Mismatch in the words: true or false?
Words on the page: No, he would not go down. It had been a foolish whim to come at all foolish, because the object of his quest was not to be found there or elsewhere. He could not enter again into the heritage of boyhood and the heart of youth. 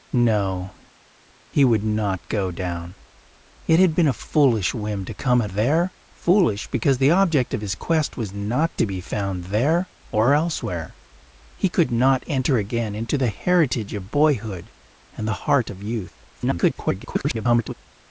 true